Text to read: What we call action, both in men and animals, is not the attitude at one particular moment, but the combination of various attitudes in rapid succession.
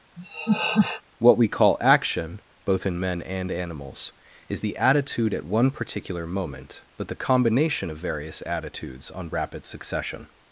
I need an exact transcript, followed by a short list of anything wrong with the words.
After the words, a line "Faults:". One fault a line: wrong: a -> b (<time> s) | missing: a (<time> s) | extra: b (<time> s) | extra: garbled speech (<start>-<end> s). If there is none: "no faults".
What we call action, both in men and animals, is the attitude at one particular moment, but the combination of various attitudes on rapid succession.
Faults:
missing: not (4.6 s)
wrong: in -> on (9.1 s)